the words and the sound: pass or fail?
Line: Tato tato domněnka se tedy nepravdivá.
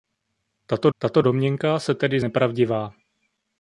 pass